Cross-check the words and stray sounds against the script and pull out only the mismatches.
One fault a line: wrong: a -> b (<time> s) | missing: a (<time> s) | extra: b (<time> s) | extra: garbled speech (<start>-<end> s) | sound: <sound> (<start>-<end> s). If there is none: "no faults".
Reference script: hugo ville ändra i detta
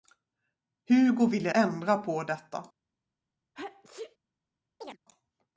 wrong: i -> på (2.0 s)
sound: sneeze (3.5-4.2 s)
sound: chirp (4.8-5.0 s)